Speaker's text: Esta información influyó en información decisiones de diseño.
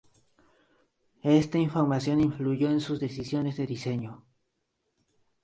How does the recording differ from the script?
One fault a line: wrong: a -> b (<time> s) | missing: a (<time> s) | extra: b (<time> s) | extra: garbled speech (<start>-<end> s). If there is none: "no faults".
wrong: información -> sus (2.8 s)